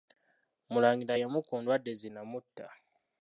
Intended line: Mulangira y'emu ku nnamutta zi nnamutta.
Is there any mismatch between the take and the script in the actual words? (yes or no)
yes